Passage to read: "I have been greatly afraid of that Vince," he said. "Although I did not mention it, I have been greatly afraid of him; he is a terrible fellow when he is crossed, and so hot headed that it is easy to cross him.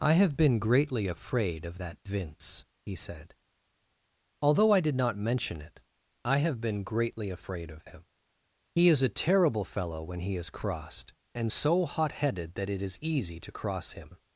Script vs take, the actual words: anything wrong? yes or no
no